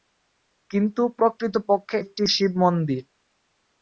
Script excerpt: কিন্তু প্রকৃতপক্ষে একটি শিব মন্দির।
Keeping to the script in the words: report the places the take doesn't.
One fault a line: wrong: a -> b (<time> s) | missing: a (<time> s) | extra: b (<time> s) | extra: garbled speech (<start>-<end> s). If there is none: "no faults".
no faults